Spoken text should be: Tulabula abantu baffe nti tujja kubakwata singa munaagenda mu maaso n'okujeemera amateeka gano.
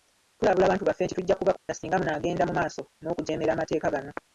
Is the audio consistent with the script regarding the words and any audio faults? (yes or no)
no